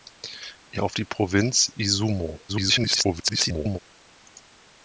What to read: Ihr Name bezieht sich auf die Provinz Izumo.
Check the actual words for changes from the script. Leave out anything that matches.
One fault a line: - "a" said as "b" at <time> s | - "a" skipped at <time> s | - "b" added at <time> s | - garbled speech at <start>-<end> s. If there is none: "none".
- "Name bezieht sich" skipped at 0.8 s
- garbled speech at 2.5-3.8 s